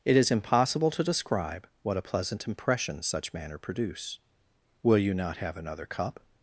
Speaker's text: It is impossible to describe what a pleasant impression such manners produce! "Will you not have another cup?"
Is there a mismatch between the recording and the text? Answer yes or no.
yes